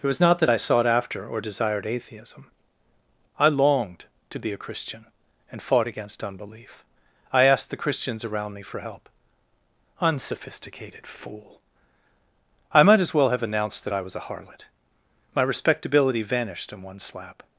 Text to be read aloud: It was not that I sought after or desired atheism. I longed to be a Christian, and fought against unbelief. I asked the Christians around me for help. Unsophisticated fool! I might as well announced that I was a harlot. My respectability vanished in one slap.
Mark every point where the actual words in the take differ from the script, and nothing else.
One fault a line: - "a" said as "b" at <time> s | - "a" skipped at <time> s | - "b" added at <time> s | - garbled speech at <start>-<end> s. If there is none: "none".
- "have" added at 13.3 s